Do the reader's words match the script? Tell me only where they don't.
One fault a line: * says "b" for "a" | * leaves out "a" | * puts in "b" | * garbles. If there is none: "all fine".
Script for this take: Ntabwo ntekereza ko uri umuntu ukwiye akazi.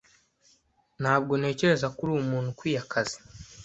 all fine